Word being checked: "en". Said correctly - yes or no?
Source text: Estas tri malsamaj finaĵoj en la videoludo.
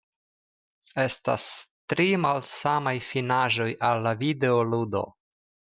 no